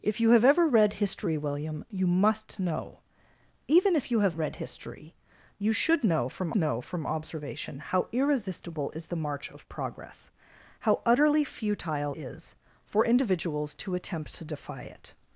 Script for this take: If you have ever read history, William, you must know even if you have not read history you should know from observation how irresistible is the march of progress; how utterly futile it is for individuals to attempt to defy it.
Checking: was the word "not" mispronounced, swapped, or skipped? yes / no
yes